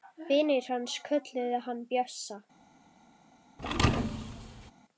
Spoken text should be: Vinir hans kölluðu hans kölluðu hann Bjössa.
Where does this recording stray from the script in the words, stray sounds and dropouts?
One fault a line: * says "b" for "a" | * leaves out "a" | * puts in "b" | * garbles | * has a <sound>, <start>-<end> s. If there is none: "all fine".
* leaves out "hans kölluðu"
* has a thud, 3.6-4.7 s